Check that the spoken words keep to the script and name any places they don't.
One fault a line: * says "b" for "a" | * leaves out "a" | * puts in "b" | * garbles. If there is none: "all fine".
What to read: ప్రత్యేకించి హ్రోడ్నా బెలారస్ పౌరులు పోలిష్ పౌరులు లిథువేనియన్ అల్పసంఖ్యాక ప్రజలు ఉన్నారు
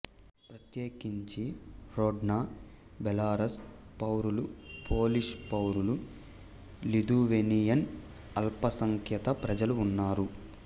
all fine